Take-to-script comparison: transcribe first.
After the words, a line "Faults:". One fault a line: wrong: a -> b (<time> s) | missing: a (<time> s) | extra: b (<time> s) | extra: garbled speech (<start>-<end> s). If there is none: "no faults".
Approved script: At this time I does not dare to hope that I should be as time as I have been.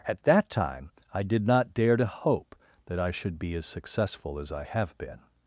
At that time I did not dare to hope that I should be as successful as I have been.
Faults:
wrong: this -> that (0.2 s)
wrong: does -> did (1.2 s)
wrong: time -> successful (3.6 s)